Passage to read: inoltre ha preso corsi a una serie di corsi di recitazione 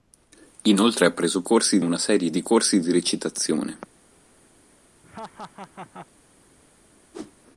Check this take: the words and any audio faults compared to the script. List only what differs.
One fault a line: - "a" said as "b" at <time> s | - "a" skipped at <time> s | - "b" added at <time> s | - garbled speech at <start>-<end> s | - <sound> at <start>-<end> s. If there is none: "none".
- laugh at 5.0-6.1 s
- whoosh at 7.1-7.3 s